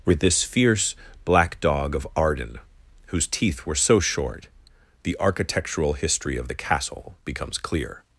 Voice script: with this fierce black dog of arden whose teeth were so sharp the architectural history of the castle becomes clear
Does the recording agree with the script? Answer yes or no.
no